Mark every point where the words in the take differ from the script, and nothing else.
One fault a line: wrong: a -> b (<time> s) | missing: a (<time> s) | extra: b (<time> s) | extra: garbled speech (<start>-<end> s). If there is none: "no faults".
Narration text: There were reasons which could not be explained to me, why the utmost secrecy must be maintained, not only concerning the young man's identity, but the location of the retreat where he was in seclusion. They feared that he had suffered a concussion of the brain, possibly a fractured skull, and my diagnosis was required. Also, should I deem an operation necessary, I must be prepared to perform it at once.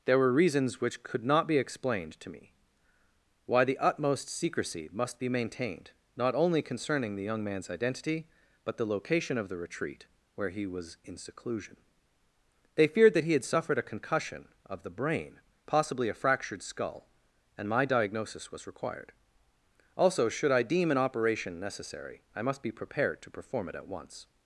no faults